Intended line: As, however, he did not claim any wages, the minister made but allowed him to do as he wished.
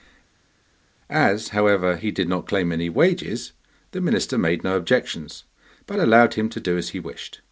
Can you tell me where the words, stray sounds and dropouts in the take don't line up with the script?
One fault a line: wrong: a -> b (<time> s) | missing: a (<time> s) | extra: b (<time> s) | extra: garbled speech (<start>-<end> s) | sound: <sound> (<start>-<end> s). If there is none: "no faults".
extra: no objections (4.6 s)